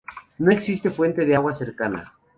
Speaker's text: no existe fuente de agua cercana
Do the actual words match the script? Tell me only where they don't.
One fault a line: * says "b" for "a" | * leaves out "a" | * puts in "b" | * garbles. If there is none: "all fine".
all fine